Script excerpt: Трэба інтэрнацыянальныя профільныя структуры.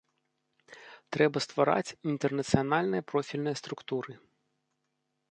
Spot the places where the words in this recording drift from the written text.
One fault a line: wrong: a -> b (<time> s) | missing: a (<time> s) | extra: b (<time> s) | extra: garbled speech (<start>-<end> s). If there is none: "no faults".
extra: ствараць (1.4 s)